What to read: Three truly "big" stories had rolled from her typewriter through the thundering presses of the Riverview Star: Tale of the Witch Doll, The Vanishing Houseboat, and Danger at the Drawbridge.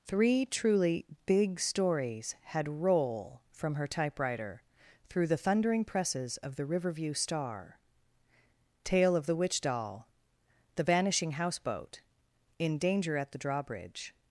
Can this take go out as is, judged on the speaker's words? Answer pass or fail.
fail